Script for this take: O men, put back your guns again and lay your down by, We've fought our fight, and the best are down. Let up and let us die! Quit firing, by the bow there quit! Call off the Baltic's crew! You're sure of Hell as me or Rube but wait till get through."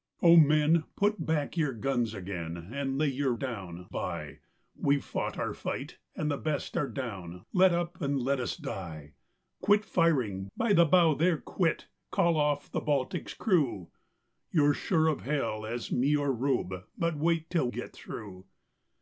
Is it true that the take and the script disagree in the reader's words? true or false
false